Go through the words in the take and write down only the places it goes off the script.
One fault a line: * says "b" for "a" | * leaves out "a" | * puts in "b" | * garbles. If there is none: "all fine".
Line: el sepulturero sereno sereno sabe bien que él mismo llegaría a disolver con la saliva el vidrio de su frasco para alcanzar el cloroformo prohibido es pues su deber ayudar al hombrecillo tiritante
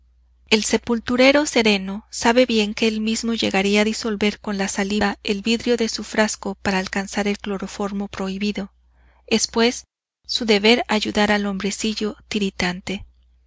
* leaves out "sereno"